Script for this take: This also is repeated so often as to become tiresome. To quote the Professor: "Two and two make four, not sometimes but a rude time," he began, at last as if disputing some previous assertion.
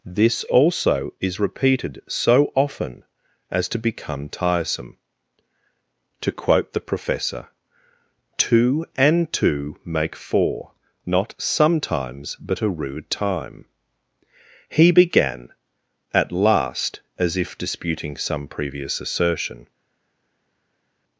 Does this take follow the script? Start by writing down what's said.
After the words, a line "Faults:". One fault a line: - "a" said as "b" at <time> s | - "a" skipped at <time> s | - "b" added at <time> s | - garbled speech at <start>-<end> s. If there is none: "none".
This also is repeated so often as to become tiresome. To quote the Professor: "Two and two make four, not sometimes but a rude time," he began, at last as if disputing some previous assertion.
Faults:
none